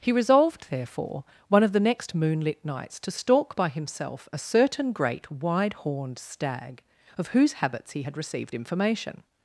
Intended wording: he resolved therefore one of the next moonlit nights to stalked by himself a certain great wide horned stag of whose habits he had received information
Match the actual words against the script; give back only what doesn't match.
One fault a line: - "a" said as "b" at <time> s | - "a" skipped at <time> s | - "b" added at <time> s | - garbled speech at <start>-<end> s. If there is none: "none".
- "stalked" said as "stalk" at 3.1 s